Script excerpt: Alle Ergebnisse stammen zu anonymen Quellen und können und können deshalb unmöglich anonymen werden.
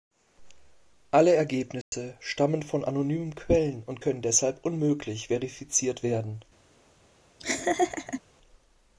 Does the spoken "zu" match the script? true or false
false